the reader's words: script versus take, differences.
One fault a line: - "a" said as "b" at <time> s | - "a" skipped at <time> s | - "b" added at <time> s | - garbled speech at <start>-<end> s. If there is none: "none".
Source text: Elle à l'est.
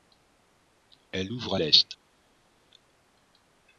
- "ouvre" added at 1.3 s